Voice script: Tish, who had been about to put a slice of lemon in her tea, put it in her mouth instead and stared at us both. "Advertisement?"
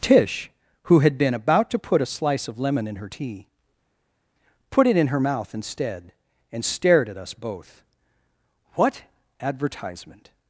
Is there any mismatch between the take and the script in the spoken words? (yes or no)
yes